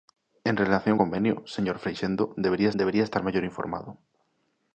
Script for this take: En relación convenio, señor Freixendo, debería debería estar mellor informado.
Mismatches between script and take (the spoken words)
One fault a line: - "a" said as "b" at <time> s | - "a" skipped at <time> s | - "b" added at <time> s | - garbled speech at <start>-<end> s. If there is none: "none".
none